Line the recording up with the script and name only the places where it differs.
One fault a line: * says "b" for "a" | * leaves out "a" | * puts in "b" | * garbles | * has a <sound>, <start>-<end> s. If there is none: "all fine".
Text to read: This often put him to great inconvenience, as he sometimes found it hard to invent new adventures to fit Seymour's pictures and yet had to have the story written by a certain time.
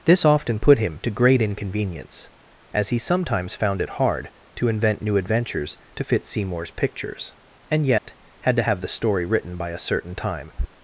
* has a dropout, 8.0-8.0 s